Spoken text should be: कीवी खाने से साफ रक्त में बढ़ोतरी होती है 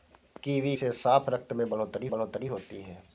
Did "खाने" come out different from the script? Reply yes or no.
yes